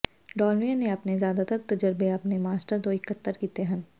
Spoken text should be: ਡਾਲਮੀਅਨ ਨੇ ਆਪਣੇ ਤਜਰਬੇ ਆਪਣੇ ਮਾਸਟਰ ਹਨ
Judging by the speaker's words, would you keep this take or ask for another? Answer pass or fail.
fail